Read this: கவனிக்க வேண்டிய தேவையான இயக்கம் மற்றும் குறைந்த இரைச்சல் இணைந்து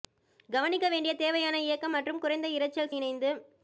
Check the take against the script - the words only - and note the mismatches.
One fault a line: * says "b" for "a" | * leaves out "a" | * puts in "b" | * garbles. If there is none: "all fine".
all fine